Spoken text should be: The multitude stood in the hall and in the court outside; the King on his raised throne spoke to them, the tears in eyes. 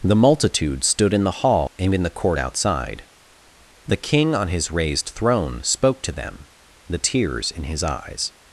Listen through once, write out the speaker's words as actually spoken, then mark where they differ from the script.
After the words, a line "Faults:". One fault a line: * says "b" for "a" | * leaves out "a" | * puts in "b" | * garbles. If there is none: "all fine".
The multitude stood in the hall and in the court outside; the King on his raised throne spoke to them, the tears in his eyes.
Faults:
* puts in "his"